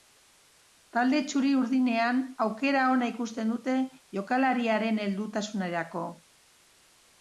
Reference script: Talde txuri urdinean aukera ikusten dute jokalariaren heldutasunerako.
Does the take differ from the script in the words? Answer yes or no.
yes